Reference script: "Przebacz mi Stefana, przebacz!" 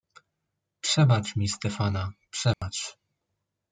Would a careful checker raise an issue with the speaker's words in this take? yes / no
no